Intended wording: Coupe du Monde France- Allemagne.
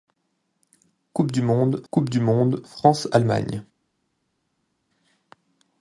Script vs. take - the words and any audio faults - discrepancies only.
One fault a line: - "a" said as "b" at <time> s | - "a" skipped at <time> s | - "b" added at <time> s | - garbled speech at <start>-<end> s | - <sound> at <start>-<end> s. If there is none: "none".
- "coupe du Monde" added at 1.9 s